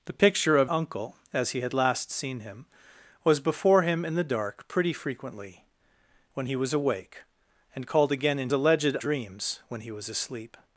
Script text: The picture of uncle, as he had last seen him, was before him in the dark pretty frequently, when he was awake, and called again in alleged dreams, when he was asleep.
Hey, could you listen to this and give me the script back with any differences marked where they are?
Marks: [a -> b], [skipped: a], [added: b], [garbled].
The picture of uncle, as he had last seen him, was before him in the dark pretty frequently, when he was awake, and called again in alleged dreams, when he was asleep.